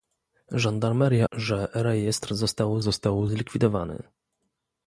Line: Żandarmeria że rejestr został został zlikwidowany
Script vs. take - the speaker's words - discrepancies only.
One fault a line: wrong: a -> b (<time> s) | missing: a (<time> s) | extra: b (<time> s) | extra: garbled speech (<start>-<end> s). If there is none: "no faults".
no faults